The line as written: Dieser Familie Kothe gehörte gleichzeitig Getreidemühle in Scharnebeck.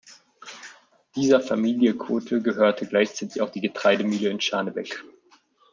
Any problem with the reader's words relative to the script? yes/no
yes